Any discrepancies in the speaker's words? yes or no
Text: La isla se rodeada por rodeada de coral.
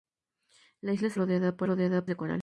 no